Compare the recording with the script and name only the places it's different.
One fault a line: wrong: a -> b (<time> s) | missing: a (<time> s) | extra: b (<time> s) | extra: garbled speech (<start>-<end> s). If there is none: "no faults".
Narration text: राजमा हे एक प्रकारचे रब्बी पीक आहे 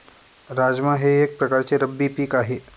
no faults